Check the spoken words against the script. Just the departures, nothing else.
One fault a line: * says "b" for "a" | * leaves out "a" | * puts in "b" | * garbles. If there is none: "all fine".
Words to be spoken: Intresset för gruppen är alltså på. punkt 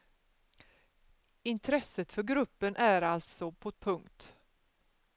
all fine